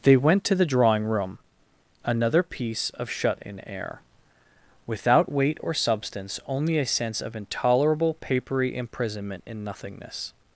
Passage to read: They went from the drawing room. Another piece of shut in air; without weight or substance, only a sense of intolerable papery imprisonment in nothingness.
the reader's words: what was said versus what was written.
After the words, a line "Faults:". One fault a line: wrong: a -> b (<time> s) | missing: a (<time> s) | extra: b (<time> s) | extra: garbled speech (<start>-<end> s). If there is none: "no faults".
They went to the drawing room. Another piece of shut in air; without weight or substance, only a sense of intolerable papery imprisonment in nothingness.
Faults:
wrong: from -> to (0.5 s)